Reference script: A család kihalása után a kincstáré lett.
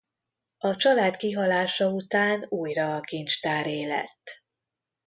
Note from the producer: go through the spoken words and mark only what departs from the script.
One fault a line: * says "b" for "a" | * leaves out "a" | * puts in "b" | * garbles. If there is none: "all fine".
* puts in "újra"